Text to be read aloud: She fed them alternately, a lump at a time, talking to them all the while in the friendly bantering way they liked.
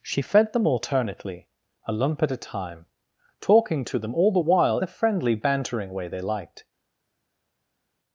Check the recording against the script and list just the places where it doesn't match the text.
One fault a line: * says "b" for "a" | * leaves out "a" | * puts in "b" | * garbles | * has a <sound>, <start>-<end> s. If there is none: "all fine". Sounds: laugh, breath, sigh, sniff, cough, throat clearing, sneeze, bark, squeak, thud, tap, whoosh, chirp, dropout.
* leaves out "in"